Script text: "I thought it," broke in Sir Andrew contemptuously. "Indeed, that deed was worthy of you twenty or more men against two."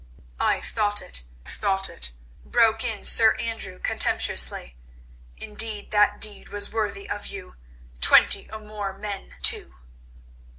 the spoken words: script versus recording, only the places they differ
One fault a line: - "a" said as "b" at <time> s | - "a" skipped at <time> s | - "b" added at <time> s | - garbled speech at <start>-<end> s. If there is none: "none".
- "thought it" added at 1.5 s
- "against" skipped at 9.3 s